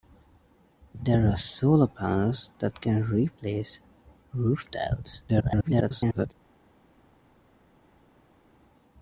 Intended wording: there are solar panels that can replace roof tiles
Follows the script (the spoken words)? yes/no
no